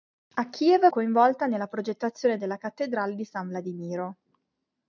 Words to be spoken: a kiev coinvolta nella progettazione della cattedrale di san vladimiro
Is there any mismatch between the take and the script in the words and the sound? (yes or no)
no